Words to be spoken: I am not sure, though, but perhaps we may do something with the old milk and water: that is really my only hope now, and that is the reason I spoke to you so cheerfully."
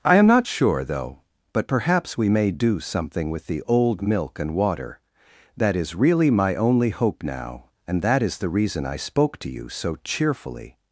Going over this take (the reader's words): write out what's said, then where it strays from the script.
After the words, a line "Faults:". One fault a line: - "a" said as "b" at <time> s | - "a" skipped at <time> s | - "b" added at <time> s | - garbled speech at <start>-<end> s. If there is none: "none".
I am not sure, though, but perhaps we may do something with the old milk and water: that is really my only hope now, and that is the reason I spoke to you so cheerfully."
Faults:
none